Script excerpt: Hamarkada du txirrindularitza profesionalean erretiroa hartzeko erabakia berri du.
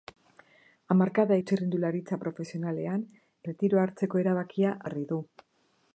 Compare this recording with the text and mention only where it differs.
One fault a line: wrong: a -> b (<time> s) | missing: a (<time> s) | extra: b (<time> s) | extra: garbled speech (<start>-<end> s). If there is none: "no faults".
no faults